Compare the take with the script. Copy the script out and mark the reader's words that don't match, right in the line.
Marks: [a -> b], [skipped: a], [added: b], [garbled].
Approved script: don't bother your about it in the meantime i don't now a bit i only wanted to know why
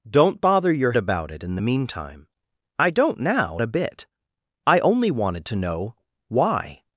don't bother your about it in the meantime i don't now a bit i only wanted to know why